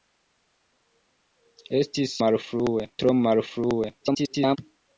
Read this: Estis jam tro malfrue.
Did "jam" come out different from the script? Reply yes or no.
yes